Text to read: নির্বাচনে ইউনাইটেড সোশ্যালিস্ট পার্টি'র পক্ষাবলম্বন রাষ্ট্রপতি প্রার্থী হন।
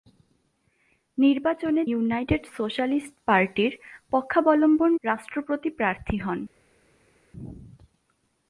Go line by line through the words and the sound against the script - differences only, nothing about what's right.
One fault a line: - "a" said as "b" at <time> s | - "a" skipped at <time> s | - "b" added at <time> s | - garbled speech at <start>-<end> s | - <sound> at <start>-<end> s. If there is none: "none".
none